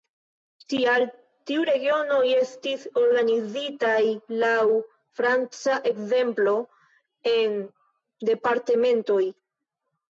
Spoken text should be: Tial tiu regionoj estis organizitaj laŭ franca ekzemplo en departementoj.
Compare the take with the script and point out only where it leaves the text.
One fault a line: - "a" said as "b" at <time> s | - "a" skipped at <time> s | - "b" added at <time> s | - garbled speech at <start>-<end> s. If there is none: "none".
none